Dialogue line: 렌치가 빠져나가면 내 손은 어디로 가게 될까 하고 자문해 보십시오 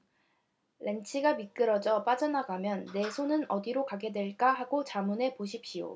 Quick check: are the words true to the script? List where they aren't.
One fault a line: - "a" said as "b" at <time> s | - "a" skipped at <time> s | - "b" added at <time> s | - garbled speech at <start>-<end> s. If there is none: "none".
- "미끄러져" added at 1.4 s